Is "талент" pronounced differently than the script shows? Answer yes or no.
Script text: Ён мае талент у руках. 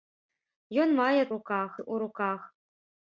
yes